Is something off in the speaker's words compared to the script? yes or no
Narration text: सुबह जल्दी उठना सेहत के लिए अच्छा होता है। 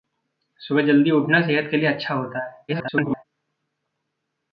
yes